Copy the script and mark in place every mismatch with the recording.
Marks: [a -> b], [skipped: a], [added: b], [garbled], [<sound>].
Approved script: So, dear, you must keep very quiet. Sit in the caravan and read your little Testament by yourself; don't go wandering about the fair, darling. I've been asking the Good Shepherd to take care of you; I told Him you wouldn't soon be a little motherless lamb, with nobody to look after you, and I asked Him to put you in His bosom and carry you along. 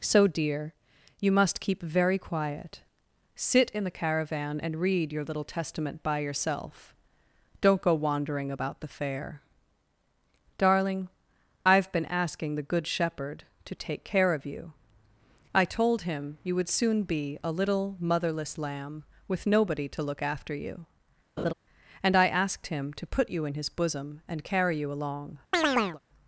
So, dear, you must keep very quiet. Sit in the caravan and read your little Testament by yourself; don't go wandering about the fair, darling. I've been asking the Good Shepherd to take care of you; I told Him you [wouldn't -> would] soon be a little motherless lamb, with nobody to look after you, [laugh] and I asked Him to put you in His bosom and carry you along. [chirp]